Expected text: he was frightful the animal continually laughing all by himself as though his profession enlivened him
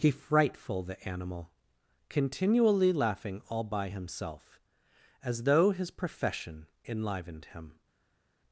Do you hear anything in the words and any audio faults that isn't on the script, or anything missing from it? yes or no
yes